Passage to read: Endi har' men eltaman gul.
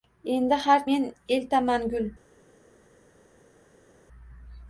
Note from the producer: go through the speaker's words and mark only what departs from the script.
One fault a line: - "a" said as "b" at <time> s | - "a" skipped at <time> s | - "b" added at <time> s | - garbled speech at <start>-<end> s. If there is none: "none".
none